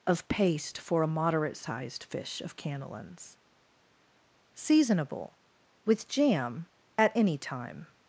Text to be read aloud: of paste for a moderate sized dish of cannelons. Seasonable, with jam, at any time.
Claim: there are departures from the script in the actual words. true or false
true